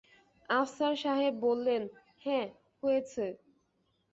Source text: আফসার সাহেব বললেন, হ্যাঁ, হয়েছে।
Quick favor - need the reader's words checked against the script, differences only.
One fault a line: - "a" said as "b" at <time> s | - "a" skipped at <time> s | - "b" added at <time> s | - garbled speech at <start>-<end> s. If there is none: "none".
none